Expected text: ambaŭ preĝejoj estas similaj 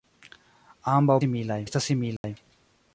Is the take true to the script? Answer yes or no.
no